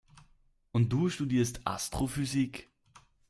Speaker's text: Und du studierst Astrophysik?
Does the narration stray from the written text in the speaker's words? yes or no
no